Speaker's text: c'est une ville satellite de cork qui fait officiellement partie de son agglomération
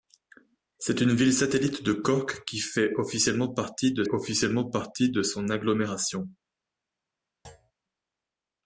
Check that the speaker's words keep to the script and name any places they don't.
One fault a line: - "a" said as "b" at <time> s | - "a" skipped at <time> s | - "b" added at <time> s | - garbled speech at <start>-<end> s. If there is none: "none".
- "officiellement partie de" added at 4.1 s